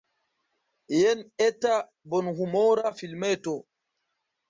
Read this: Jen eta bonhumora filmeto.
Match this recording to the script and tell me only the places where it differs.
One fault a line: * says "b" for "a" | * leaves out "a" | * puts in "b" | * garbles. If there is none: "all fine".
all fine